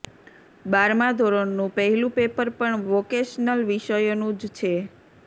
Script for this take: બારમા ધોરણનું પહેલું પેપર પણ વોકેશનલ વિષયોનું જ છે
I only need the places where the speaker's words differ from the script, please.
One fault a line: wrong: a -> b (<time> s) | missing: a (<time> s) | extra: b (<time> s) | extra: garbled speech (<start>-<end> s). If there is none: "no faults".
no faults